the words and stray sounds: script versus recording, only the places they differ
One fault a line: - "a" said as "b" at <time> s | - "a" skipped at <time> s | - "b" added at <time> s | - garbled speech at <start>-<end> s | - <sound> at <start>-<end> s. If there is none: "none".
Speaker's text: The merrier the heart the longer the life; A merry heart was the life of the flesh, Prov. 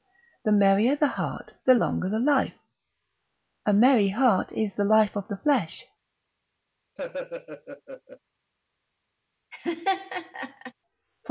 - "was" said as "is" at 4.5 s
- laugh at 7.0-8.2 s
- laugh at 9.5-10.7 s